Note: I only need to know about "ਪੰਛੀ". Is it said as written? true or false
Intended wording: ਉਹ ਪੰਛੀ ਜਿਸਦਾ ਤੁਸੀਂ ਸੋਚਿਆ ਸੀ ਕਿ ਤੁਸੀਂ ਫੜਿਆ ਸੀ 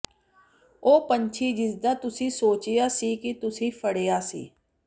true